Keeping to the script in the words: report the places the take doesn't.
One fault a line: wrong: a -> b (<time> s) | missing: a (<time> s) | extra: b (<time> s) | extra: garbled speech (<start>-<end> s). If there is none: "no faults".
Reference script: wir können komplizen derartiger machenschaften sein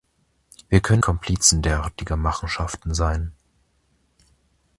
no faults